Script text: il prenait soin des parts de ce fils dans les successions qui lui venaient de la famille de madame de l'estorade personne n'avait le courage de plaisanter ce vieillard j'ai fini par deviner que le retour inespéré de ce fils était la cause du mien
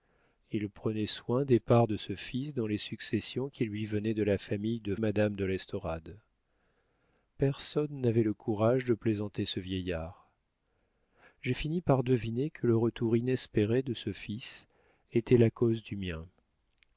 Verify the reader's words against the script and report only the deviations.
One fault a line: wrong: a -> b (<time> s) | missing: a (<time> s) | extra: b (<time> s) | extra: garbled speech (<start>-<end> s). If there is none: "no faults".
no faults